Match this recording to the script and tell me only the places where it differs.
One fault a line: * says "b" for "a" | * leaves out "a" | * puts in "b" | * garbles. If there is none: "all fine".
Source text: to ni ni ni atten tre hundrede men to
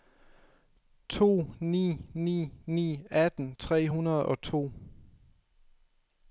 * says "og" for "men"